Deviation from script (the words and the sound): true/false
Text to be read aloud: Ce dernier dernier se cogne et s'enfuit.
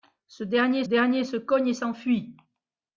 false